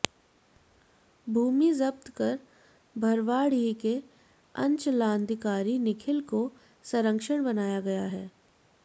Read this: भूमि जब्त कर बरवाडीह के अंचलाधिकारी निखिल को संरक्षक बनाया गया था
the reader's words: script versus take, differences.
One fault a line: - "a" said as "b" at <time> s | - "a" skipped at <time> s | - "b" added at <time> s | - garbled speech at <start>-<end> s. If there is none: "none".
- "था" said as "है" at 8.2 s